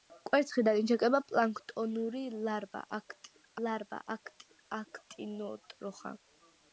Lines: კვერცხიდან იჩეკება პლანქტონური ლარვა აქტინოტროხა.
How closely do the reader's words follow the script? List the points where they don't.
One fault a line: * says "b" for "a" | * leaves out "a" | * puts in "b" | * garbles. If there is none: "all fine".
* puts in "ლარვა"